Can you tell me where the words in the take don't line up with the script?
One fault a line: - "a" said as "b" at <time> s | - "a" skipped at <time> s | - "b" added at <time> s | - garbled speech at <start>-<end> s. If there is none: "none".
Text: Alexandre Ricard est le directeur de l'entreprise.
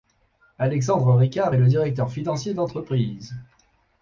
- "financier" added at 2.1 s